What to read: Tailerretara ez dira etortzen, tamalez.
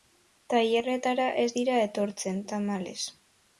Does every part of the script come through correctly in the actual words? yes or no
yes